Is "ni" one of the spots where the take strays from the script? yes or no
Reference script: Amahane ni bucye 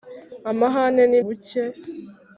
no